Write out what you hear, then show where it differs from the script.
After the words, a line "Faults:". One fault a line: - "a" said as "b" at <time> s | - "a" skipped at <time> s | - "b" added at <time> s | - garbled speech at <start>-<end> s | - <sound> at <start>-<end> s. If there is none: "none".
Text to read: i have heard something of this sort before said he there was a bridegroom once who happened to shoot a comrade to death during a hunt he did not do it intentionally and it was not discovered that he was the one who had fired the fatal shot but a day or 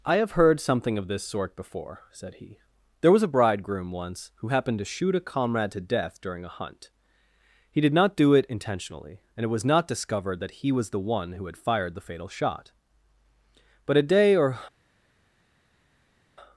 i have heard something of this sort before said he there was a bridegroom once who happened to shoot a comrade to death during a hunt he did not do it intentionally and it was not discovered that he was the one who had fired the fatal shot but a day or
Faults:
none